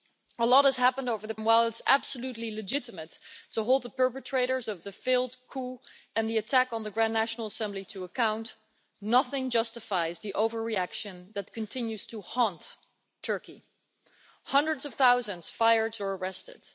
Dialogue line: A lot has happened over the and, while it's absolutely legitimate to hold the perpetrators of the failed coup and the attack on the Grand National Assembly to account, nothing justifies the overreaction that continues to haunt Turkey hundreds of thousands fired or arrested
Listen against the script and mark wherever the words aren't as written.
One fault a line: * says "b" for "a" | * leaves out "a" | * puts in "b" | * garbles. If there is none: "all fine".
all fine